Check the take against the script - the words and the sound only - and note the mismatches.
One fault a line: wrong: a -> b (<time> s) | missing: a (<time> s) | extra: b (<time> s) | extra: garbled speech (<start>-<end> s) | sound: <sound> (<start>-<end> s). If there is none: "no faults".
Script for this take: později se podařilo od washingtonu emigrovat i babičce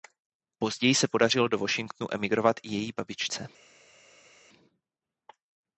wrong: od -> do (1.5 s)
extra: její (2.7 s)